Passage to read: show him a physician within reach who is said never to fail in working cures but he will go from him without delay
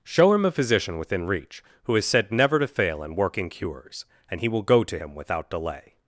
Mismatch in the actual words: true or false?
true